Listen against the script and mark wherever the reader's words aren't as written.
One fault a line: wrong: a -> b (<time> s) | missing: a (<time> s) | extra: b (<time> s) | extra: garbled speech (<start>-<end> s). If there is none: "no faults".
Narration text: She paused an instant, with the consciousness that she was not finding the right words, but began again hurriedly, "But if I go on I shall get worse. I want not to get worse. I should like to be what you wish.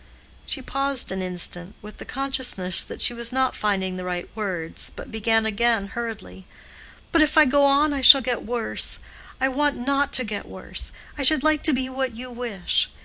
no faults